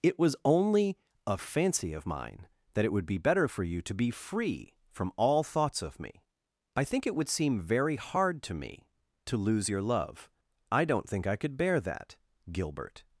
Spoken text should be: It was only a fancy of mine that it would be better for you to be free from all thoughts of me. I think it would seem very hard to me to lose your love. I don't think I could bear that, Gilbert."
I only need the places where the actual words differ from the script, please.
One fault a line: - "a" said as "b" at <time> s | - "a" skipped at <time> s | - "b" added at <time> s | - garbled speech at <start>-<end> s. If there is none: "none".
none